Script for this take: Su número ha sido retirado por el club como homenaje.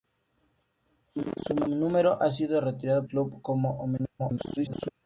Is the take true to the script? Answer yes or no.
no